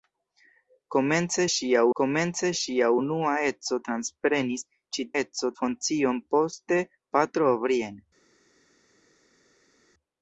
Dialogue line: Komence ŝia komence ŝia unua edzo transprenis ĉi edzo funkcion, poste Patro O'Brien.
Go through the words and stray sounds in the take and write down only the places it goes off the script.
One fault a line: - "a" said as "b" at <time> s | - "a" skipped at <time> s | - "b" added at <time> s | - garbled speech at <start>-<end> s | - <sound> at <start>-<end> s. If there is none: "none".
none